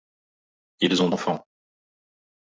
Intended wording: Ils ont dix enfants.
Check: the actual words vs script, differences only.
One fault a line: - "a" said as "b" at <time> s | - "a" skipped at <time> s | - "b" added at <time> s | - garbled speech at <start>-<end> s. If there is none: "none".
- "dix" skipped at 1.1 s